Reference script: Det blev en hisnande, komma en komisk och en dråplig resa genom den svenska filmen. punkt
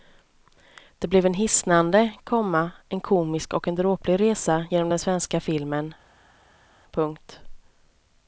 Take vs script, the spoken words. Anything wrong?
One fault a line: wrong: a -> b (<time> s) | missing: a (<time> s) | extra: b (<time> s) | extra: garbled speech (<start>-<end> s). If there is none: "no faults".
no faults